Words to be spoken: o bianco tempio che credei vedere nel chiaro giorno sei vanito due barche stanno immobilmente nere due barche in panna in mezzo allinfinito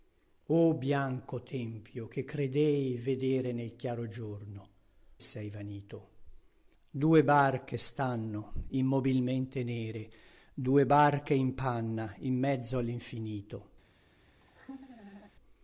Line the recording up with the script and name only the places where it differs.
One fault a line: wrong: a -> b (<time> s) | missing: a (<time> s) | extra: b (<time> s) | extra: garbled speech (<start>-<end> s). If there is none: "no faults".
no faults